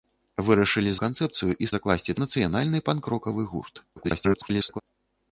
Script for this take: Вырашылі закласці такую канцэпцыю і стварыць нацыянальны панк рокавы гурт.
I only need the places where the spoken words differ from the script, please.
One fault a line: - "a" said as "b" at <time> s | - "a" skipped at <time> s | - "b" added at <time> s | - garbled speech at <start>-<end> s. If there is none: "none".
- "закласці такую" skipped at 0.9 s
- "стварыць" said as "закласці" at 1.7 s
- garbled speech at 4.0-4.8 s